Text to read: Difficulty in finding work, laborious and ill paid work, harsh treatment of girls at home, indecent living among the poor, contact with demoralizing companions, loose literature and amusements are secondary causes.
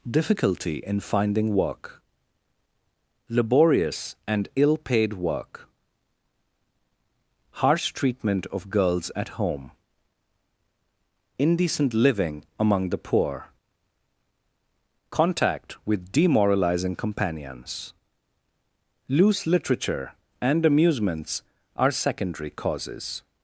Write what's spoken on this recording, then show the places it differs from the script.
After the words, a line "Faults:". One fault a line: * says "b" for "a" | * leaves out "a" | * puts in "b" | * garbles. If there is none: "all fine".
Difficulty in finding work, laborious and ill paid work, harsh treatment of girls at home, indecent living among the poor, contact with demoralizing companions, loose literature and amusements are secondary causes.
Faults:
all fine